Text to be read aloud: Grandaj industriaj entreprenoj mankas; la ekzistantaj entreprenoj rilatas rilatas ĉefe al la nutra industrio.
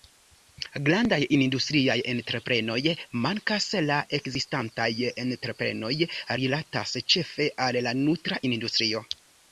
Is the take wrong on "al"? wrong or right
right